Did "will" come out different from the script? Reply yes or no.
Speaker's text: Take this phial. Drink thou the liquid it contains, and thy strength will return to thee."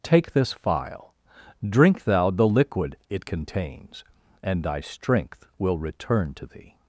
no